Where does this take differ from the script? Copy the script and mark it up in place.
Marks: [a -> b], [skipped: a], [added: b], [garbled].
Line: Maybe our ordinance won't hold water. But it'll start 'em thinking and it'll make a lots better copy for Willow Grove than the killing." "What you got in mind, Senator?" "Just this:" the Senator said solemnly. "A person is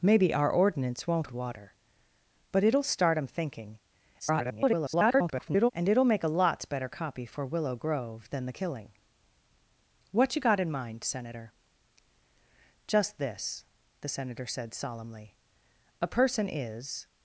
Maybe our ordinance won't [skipped: hold] water. But it'll start 'em thinking [garbled] and it'll make a lots better copy for Willow Grove than the killing." "What you got in mind, Senator?" "Just this:" the Senator said solemnly. "A person is